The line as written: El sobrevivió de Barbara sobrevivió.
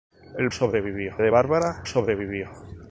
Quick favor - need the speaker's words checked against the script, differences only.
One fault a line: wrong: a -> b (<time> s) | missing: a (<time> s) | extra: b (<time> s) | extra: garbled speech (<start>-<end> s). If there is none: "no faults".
no faults